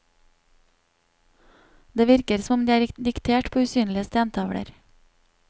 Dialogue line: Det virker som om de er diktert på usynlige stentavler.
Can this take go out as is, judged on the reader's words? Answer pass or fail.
pass